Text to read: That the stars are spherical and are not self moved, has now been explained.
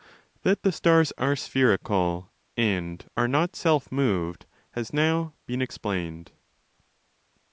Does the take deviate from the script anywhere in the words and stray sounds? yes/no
no